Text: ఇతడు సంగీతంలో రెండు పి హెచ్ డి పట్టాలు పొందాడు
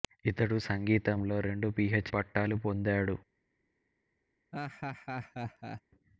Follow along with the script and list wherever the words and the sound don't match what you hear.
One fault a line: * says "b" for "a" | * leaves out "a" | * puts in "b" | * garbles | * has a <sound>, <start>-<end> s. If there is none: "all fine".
* leaves out "డి"
* has a laugh, 4.5-5.8 s